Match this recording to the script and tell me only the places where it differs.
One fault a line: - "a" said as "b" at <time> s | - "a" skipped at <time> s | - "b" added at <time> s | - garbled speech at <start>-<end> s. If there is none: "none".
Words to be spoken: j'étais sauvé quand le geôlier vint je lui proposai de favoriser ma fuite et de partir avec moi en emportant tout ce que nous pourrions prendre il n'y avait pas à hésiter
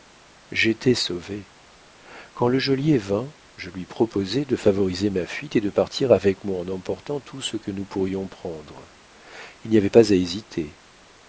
none